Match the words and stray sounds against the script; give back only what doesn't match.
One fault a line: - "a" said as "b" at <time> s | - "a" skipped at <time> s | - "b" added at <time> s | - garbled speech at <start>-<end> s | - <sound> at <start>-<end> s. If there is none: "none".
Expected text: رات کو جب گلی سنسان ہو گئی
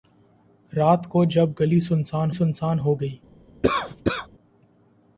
- "سنسان" added at 2.3 s
- cough at 3.6-4.3 s